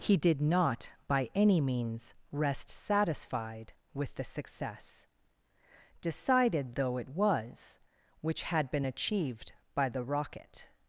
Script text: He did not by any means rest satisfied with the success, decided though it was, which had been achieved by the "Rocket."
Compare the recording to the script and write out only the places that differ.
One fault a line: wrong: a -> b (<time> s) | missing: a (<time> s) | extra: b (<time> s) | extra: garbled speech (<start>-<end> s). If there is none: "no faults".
no faults